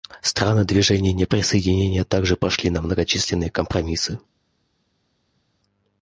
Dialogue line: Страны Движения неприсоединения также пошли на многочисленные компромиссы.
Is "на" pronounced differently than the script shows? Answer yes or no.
no